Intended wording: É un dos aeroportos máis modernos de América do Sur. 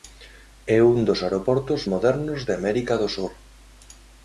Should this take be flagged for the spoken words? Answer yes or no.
yes